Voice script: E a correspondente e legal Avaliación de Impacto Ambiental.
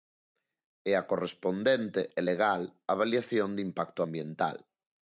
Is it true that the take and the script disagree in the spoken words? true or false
false